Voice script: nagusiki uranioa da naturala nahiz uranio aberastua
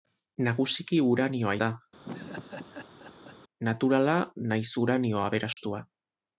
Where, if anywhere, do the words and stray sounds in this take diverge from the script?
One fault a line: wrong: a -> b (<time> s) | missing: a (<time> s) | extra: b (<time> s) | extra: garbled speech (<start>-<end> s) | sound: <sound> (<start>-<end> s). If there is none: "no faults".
sound: laugh (2.0-3.4 s)
sound: dropout (5.5-5.6 s)